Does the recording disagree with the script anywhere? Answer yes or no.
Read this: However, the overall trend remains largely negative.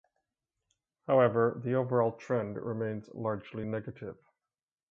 no